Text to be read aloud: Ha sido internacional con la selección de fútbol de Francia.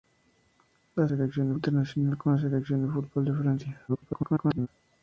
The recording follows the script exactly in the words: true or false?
false